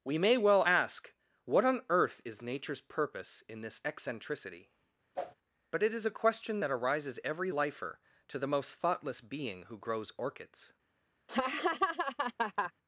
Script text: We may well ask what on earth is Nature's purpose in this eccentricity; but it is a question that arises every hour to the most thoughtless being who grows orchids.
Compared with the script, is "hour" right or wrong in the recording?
wrong